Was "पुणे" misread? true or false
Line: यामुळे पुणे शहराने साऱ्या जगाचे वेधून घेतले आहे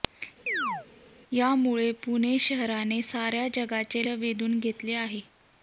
false